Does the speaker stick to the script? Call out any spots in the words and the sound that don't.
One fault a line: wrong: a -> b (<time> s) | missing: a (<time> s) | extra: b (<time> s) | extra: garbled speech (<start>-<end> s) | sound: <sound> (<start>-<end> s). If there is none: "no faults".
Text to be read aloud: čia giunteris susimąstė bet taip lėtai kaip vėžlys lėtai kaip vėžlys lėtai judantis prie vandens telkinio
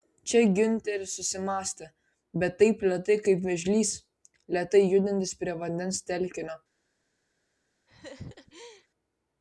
missing: kaip vėžlys lėtai (4.8 s)
sound: laugh (7.9-8.9 s)